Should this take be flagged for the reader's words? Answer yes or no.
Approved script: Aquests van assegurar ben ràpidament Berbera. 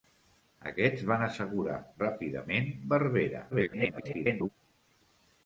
yes